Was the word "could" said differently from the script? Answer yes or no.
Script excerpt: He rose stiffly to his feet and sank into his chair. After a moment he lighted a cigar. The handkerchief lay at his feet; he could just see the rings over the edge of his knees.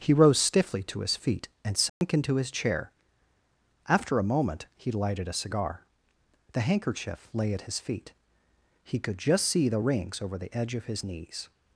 no